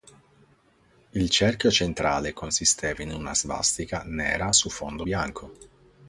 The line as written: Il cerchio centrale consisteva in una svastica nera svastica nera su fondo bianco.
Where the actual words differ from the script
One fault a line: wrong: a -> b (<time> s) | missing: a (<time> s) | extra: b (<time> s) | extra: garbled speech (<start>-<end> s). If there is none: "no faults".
missing: svastica nera (4.5 s)